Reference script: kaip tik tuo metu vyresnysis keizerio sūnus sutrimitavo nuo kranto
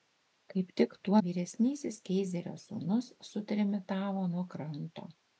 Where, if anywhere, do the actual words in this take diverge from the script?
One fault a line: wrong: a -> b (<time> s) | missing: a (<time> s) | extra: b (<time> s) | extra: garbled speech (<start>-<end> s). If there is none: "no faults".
missing: metu (1.2 s)